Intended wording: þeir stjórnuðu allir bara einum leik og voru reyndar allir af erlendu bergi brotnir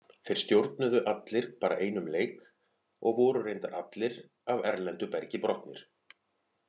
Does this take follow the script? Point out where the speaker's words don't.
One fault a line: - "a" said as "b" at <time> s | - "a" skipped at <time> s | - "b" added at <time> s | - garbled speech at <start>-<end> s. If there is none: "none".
none